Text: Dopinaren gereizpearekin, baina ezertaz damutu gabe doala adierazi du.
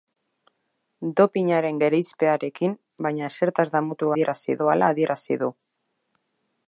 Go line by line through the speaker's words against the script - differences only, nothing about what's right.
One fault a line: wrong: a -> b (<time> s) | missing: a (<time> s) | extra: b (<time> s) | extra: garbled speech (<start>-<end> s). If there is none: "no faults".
wrong: gabe -> adierazi (4.1 s)